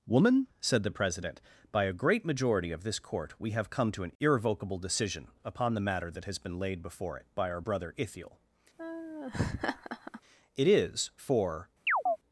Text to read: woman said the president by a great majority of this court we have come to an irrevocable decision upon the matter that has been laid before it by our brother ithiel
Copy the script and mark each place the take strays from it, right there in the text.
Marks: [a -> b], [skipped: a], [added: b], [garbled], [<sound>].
woman said the president by a great majority of this court we have come to an irrevocable decision upon the matter that has been laid before it by our brother ithiel [laugh] [added: it is for] [chirp]